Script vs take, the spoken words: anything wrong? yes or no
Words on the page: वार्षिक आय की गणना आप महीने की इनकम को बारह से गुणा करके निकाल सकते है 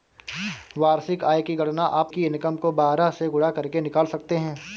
yes